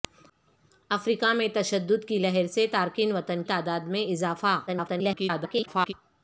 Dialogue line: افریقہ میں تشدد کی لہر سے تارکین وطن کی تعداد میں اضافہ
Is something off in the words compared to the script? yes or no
yes